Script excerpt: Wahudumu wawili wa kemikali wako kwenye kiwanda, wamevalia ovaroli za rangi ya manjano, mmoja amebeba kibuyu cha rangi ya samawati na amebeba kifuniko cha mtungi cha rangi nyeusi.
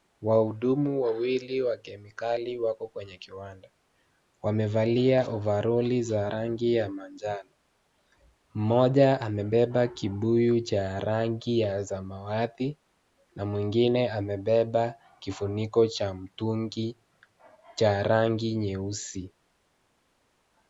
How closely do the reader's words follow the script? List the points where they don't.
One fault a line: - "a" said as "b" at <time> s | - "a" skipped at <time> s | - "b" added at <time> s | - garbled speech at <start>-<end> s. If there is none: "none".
- "mwingine" added at 13.4 s